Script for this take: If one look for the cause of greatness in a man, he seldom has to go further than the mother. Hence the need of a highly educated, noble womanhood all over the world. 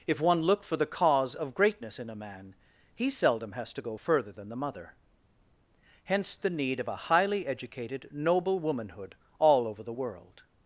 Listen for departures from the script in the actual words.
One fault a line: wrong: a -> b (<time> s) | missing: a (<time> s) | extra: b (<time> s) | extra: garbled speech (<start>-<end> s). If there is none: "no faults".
no faults